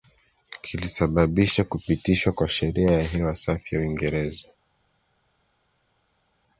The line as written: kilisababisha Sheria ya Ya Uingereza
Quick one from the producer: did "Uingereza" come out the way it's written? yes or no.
yes